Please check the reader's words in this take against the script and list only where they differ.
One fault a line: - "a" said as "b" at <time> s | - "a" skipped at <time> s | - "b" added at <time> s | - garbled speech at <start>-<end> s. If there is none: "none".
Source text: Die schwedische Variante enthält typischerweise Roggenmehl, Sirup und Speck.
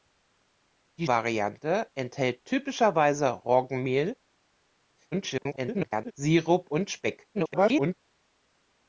- "schwedische" skipped at 1.1 s
- garbled speech at 5.1-6.1 s
- garbled speech at 7.3-8.0 s